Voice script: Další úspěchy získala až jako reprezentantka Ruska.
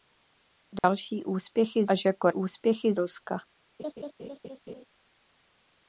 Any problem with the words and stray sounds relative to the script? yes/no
yes